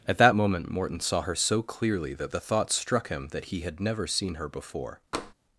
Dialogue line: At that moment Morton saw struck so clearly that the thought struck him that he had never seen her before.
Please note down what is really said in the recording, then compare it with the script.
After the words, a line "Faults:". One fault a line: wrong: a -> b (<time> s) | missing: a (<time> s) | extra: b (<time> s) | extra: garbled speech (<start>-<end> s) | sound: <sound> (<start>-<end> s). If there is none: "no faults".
At that moment Morton saw her so clearly that the thought struck him that he had never seen her before.
Faults:
wrong: struck -> her (1.2 s)
sound: tap (5.1-5.3 s)